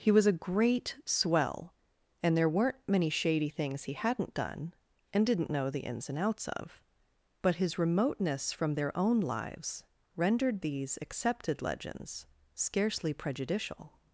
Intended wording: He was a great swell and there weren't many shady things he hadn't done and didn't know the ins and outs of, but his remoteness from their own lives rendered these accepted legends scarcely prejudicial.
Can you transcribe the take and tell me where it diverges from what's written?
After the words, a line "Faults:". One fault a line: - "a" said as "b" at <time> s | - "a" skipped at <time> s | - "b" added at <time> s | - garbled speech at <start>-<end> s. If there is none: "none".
He was a great swell and there weren't many shady things he hadn't done and didn't know the ins and outs of, but his remoteness from their own lives rendered these accepted legends scarcely prejudicial.
Faults:
none